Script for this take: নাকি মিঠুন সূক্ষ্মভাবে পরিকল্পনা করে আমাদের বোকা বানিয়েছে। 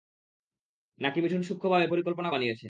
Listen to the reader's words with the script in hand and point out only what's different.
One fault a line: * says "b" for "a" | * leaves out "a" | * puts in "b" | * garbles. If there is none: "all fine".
* leaves out "করে আমাদের বোকা"